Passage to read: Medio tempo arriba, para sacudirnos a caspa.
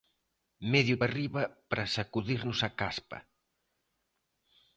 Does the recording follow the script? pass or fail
fail